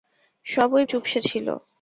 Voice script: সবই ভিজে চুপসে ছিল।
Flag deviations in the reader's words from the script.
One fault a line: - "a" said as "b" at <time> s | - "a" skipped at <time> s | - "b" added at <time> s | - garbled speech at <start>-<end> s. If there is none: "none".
- "ভিজে" skipped at 0.8 s